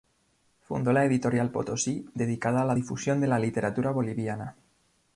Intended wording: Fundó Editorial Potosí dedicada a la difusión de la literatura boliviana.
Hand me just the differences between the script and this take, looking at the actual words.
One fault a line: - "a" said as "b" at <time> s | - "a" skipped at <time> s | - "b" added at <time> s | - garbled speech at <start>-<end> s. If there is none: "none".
- "la" added at 0.9 s